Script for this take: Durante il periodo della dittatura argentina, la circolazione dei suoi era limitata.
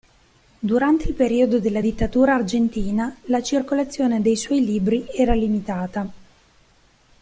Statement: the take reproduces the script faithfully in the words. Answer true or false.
false